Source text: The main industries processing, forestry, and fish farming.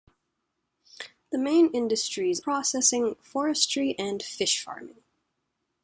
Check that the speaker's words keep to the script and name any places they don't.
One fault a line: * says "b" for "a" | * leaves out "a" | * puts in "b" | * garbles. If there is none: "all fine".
all fine